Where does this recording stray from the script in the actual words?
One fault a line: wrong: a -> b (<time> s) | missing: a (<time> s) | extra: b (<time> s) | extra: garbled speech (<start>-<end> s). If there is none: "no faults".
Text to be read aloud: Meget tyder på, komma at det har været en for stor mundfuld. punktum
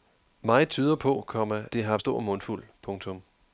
missing: at (1.6 s)
missing: været en for (2.0 s)